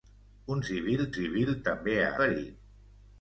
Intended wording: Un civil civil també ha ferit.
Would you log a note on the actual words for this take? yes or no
no